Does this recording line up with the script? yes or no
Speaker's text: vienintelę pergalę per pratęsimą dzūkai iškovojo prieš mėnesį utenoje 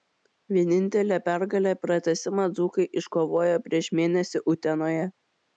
no